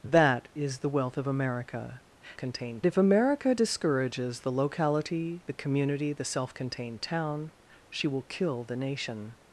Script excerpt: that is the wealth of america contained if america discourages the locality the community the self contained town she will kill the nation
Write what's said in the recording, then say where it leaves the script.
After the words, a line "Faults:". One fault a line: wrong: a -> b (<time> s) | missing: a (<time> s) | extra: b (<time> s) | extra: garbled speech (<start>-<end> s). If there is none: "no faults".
that is the wealth of america contained if america discourages the locality the community the self contained town she will kill the nation
Faults:
no faults